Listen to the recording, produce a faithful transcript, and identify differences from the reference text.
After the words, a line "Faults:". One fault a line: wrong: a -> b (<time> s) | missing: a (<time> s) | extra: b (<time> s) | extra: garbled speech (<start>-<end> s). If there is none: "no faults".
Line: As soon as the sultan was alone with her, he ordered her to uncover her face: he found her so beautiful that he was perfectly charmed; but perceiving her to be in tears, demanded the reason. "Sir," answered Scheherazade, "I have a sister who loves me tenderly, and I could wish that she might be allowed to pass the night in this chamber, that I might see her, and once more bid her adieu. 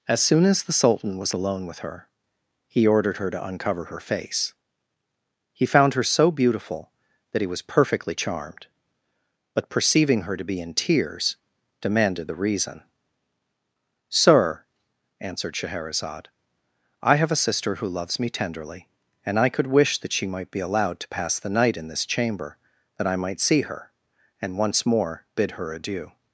As soon as the sultan was alone with her, he ordered her to uncover her face: he found her so beautiful that he was perfectly charmed; but perceiving her to be in tears, demanded the reason. "Sir," answered Scheherazade, "I have a sister who loves me tenderly, and I could wish that she might be allowed to pass the night in this chamber, that I might see her, and once more bid her adieu.
Faults:
no faults